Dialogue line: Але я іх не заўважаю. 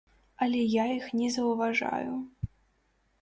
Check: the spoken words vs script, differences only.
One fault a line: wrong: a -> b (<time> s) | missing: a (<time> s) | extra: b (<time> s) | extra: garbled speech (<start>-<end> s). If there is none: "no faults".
no faults